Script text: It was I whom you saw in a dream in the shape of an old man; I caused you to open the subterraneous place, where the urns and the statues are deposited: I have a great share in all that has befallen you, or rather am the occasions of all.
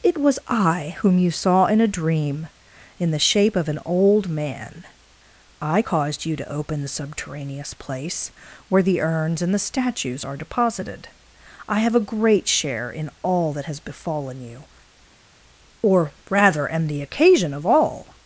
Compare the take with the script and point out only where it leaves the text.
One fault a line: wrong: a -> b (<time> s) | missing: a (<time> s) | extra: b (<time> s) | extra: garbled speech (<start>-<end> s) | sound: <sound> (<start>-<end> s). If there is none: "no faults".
wrong: occasions -> occasion (17.0 s)